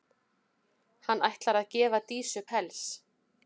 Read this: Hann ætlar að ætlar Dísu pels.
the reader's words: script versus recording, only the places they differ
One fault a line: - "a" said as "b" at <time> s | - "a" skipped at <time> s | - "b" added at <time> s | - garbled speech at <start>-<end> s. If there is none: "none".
- "ætlar" said as "gefa" at 1.7 s